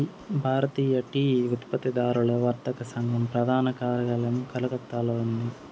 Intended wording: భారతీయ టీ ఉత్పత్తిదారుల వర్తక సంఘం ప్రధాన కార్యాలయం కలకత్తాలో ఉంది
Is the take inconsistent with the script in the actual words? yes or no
no